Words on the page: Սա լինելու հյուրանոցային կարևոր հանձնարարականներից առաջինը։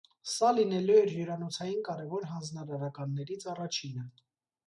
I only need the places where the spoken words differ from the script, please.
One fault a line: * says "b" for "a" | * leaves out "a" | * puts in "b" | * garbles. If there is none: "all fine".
* puts in "էր"